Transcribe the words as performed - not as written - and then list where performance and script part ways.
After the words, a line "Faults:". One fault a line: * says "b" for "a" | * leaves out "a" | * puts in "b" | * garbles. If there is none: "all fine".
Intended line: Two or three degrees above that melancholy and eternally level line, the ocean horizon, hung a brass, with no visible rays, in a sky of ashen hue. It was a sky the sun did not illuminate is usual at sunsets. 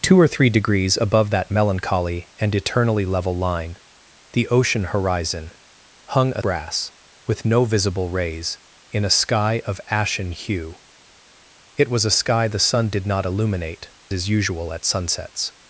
Two or three degrees above that melancholy and eternally level line, the ocean horizon, hung a brass, with no visible rays, in a sky of ashen hue. It was a sky the sun did not illuminate is usual at sunsets.
Faults:
all fine